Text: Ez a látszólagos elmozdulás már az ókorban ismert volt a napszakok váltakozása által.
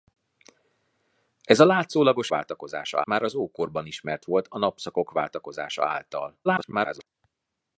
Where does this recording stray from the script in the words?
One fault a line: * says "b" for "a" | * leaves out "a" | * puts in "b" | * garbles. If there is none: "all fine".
* says "váltakozása" for "elmozdulás"
* garbles